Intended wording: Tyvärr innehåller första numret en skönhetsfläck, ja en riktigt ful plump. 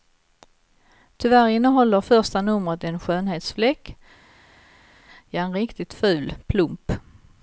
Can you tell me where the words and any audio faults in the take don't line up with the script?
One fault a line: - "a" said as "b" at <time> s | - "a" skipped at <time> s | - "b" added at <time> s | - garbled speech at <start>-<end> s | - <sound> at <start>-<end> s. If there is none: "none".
none